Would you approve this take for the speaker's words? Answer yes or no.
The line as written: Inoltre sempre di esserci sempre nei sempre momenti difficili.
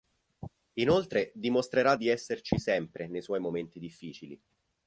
no